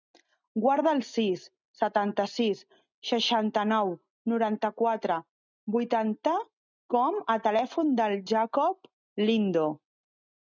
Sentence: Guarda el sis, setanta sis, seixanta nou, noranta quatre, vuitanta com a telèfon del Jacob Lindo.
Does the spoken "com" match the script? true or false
true